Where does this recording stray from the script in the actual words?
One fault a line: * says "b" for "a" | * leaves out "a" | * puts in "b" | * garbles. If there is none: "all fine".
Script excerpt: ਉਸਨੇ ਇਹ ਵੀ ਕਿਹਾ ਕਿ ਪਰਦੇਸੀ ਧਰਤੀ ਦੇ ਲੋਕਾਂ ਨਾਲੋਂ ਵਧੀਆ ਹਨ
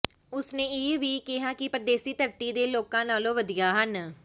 all fine